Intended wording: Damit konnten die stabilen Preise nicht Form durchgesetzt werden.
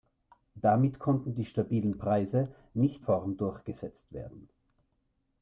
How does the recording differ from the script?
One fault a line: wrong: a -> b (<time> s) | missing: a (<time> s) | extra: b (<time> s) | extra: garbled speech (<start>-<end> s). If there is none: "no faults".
no faults